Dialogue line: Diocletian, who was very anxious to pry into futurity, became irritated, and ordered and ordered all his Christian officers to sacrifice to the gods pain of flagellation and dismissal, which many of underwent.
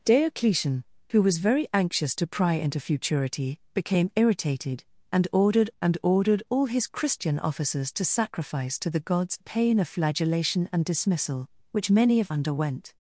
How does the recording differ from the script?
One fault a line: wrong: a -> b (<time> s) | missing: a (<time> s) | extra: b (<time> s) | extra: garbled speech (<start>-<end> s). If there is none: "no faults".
no faults